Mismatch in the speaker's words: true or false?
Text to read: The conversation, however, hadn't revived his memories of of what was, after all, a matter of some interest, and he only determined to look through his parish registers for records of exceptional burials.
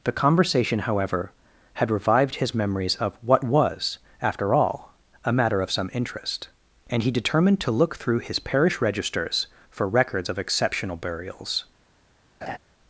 true